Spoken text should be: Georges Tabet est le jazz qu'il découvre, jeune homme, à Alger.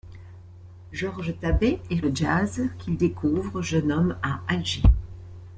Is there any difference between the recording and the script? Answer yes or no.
no